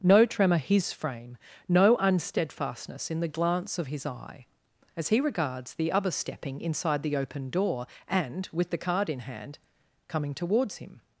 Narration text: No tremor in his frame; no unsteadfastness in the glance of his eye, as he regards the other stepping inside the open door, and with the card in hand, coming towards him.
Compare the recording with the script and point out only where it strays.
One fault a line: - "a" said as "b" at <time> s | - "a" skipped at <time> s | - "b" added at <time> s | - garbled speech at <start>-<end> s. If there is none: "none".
- "in" skipped at 0.6 s